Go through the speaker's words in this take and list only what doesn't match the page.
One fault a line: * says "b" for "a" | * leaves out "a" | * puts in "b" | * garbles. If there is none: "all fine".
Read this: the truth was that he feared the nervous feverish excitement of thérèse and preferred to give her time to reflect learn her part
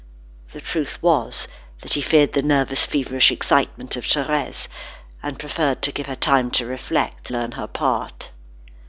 all fine